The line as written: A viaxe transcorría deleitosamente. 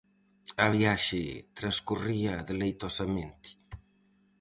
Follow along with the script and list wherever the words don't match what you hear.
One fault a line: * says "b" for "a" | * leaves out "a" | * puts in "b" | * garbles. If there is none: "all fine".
all fine